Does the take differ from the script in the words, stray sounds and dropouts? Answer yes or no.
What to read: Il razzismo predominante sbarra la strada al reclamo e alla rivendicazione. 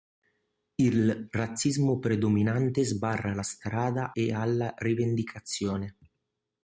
yes